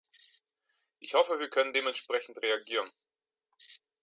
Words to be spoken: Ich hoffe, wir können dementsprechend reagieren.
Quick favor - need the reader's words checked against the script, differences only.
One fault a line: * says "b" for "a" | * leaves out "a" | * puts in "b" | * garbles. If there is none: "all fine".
all fine